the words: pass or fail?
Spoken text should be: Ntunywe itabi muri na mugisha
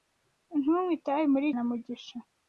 pass